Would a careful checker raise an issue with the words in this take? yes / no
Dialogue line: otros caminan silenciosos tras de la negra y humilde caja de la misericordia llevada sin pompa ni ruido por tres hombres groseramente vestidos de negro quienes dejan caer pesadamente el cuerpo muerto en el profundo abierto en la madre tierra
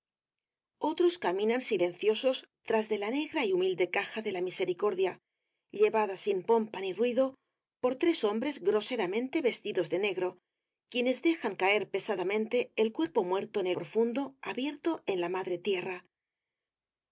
no